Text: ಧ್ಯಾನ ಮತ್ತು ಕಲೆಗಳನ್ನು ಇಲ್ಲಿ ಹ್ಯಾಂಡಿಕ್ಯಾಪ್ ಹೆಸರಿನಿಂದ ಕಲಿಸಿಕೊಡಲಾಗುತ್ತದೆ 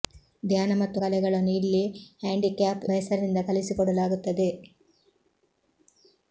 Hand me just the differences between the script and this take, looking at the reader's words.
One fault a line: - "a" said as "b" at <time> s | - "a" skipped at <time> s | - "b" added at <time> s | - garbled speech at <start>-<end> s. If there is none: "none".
none